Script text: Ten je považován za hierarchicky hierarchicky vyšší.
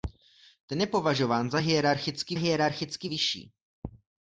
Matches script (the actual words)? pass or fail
pass